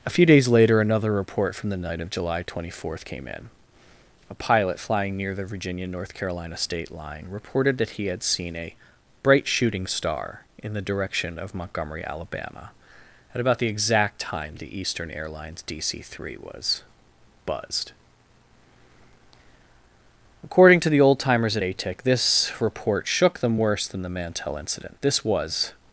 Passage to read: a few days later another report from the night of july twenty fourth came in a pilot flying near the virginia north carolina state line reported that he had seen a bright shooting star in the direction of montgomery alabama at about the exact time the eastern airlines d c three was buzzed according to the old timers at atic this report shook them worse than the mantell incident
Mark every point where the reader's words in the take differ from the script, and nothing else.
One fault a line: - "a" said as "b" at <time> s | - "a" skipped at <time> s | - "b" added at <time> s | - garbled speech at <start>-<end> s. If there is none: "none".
- "this was" added at 25.0 s